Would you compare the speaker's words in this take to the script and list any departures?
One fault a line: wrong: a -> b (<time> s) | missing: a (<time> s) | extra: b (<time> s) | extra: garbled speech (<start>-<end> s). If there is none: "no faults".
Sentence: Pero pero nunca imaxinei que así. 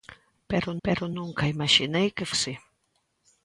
no faults